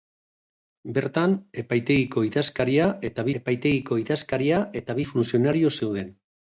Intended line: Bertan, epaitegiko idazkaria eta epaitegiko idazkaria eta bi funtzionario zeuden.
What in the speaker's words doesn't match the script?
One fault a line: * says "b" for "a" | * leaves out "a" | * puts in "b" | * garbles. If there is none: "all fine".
all fine